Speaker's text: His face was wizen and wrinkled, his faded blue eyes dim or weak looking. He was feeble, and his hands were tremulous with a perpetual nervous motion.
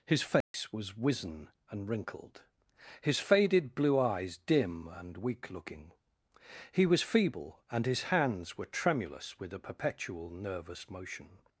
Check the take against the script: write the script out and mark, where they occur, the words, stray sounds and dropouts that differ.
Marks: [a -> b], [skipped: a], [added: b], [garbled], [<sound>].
His face [dropout] was wizen and wrinkled, his faded blue eyes dim [or -> and] weak looking. He was feeble, and his hands were tremulous with a perpetual nervous motion.